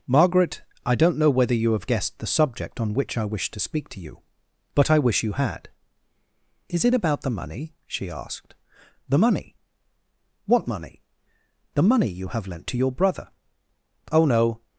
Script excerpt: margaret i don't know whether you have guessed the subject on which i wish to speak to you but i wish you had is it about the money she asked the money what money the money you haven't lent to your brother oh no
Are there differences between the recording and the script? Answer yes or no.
yes